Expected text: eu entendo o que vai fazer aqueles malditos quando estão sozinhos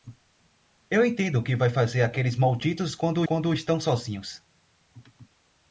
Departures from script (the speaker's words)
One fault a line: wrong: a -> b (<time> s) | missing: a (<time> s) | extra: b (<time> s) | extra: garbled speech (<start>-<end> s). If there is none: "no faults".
extra: quando (3.2 s)